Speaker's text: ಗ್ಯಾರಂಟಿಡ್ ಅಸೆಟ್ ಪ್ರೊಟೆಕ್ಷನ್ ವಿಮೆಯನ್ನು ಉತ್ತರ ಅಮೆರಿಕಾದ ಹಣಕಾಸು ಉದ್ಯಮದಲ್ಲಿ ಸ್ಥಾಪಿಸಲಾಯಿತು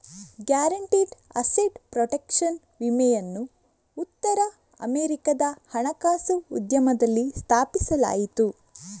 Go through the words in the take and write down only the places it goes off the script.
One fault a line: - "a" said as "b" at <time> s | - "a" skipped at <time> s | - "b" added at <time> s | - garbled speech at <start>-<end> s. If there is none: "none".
none